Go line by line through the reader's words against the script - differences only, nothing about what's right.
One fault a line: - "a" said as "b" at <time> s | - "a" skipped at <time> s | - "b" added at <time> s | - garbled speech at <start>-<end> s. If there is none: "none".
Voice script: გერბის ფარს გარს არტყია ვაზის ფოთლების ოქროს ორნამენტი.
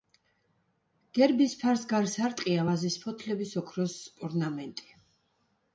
none